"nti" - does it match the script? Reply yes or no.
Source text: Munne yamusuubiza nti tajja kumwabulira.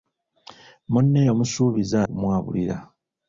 no